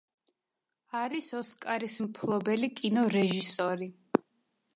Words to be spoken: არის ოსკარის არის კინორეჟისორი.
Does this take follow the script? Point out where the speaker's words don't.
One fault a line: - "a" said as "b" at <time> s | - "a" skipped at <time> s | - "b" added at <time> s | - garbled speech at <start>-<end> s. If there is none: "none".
- "არის" said as "მფლობელი" at 2.0 s